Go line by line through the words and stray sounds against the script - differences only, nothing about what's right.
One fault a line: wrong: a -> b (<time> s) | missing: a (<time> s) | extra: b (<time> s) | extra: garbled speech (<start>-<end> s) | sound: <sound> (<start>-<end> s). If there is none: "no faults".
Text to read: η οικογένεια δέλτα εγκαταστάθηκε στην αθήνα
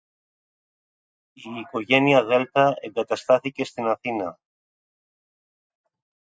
no faults